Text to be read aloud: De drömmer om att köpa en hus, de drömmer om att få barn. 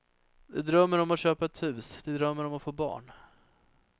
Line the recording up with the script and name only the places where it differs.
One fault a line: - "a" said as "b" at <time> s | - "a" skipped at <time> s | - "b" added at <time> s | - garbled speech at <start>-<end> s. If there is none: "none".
- "en" said as "ett" at 1.4 s